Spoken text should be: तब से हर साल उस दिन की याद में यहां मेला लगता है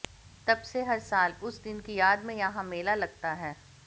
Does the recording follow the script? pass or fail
pass